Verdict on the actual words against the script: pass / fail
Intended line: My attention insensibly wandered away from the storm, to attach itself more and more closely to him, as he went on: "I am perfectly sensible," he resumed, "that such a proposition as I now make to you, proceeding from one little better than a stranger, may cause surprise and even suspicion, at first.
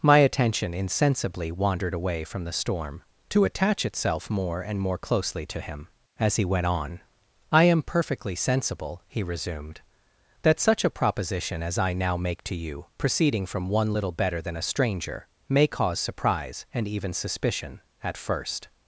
pass